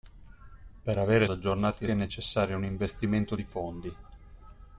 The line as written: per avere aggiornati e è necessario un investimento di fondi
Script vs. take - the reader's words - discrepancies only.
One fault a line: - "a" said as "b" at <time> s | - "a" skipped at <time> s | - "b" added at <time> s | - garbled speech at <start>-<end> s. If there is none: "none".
none